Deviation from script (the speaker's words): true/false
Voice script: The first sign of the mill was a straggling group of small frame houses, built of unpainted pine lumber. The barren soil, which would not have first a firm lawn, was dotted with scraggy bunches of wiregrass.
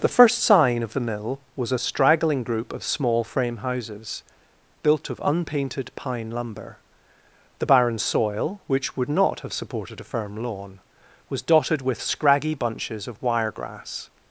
true